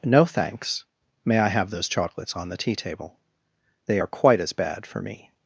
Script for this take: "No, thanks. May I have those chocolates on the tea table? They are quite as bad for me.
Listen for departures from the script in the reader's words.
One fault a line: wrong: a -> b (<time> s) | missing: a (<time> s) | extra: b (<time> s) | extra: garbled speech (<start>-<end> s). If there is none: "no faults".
no faults